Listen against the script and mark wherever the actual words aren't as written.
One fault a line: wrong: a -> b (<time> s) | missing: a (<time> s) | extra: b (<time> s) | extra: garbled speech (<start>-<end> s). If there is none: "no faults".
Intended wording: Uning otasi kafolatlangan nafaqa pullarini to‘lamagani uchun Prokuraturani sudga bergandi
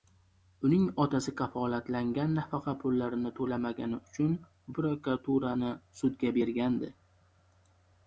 no faults